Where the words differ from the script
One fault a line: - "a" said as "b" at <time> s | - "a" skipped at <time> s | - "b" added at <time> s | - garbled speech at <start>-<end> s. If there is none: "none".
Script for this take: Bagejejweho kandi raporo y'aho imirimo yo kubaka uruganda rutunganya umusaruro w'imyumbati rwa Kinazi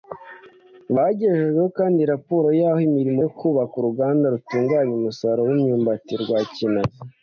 none